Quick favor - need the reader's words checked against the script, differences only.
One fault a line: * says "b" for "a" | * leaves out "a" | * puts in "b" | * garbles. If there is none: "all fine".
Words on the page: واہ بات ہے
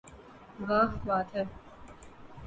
all fine